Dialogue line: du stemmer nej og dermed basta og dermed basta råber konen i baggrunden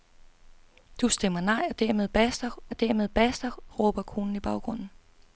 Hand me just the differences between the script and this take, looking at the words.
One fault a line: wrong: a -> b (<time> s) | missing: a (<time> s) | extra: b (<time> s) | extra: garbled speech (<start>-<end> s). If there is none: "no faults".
no faults